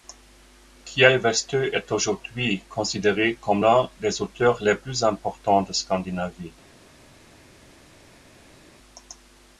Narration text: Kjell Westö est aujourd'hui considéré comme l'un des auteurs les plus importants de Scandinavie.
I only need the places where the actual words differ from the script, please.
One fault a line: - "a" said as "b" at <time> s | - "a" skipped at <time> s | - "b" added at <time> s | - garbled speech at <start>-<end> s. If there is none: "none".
none